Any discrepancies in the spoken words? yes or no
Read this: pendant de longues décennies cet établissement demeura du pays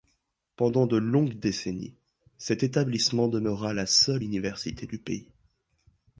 yes